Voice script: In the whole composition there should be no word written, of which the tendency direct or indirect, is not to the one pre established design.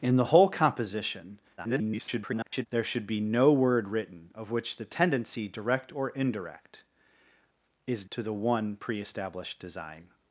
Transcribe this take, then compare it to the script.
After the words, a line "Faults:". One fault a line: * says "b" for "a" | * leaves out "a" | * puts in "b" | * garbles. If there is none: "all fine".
In the whole composition [garbled] there should be no word written, of which the tendency direct or indirect, is to the one pre established design.
Faults:
* garbles
* leaves out "not"